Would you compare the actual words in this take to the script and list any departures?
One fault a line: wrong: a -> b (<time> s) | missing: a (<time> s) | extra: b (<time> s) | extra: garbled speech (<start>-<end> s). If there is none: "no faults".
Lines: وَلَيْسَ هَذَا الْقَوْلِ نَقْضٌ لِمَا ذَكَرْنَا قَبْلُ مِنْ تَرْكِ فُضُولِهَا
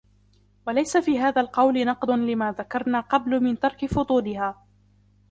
extra: فِي (1.0 s)